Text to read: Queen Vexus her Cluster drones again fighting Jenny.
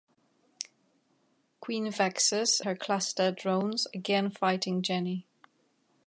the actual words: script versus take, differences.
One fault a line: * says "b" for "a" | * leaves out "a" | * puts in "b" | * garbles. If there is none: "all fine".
all fine